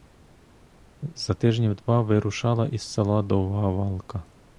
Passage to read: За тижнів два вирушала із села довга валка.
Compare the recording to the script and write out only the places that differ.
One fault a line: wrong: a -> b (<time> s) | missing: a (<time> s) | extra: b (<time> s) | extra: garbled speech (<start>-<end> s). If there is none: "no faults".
no faults